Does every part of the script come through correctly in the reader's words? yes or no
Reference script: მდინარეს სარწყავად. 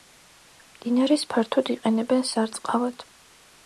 no